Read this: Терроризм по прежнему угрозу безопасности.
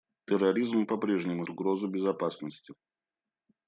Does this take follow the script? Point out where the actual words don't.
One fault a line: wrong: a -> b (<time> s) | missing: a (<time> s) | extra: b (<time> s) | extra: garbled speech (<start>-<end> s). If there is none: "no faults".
no faults